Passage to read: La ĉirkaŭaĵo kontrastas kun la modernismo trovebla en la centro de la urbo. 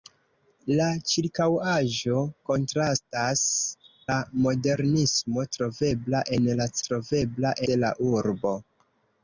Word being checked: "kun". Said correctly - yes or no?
no